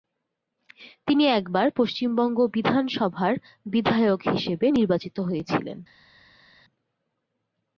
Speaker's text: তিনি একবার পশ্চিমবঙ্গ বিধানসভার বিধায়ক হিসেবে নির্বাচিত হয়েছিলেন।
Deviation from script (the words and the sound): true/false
false